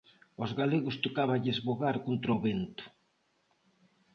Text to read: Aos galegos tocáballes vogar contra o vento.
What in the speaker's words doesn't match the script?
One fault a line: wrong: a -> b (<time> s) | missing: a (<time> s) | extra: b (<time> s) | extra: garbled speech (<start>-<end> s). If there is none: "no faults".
no faults